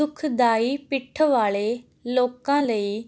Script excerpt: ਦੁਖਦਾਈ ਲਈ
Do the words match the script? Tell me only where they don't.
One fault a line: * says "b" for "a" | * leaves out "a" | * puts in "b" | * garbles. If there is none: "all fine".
* puts in "ਪਿੱਠ ਵਾਲੇ ਲੋਕਾਂ"